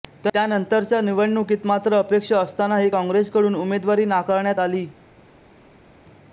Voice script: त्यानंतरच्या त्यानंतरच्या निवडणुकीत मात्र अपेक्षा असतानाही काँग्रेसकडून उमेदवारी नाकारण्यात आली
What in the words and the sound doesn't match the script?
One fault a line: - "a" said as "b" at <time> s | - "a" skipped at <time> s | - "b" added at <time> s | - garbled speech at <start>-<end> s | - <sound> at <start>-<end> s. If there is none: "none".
- "त्यानंतरच्या" skipped at 1.0 s